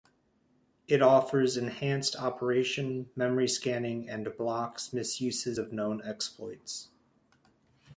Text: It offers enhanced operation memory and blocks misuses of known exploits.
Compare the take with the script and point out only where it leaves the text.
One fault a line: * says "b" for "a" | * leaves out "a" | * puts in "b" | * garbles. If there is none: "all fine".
* puts in "scanning"